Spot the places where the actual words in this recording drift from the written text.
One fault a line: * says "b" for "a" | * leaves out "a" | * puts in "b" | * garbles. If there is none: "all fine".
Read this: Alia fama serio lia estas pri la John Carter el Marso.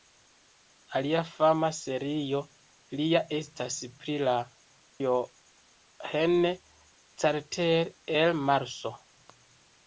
all fine